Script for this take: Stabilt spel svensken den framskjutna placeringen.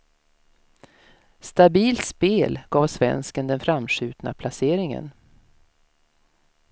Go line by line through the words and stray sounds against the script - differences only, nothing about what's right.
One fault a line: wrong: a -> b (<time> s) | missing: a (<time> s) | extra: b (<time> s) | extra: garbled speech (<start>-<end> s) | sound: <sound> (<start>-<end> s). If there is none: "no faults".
extra: gav (2.7 s)